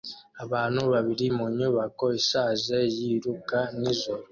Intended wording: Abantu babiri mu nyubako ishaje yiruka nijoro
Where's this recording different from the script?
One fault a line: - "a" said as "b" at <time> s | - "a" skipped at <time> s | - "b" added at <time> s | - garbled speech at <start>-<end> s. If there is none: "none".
none